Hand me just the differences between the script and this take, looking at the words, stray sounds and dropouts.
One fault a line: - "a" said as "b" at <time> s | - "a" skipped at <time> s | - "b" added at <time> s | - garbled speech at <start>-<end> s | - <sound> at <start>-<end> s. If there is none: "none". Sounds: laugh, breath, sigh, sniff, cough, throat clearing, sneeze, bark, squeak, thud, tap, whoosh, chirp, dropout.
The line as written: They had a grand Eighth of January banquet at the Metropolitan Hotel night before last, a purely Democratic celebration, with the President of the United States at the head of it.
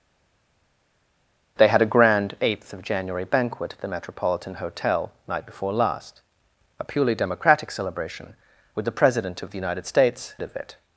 - "at the head" skipped at 10.3 s